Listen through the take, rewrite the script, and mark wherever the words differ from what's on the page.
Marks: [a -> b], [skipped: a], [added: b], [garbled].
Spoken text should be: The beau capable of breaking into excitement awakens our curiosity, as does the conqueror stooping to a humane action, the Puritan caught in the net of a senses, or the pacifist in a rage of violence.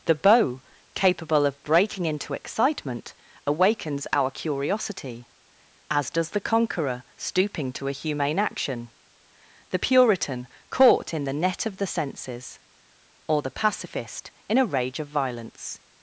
The beau capable of breaking into excitement awakens our curiosity, as does the conqueror stooping to a humane action, the Puritan caught in the net of [a -> the] senses, or the pacifist in a rage of violence.